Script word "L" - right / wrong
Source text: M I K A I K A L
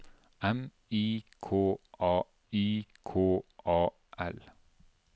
right